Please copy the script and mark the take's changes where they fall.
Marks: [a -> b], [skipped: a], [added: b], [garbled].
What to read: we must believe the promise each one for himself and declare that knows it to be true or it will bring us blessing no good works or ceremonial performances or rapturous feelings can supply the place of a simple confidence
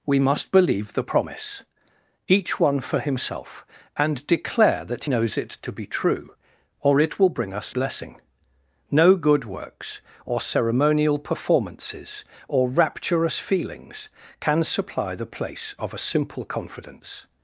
we must believe the promise each one for himself and declare that knows it to be true or it will bring us blessing no good works or ceremonial performances or rapturous feelings can supply the place of a simple confidence